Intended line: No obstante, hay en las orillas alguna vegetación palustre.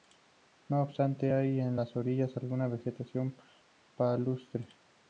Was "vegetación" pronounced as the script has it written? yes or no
yes